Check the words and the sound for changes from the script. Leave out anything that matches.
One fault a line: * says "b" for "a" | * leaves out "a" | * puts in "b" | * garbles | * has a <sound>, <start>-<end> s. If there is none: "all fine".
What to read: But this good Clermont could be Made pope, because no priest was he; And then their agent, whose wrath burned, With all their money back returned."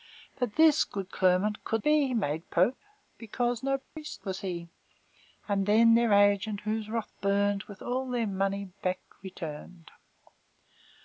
* has a dropout, 3.8-4.0 s